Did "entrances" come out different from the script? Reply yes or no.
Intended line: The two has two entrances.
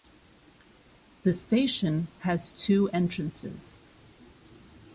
no